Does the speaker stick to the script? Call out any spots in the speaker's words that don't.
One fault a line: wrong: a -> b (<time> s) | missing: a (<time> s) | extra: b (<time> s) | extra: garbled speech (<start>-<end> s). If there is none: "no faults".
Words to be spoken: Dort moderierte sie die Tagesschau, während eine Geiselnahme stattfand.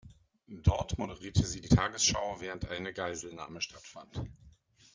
no faults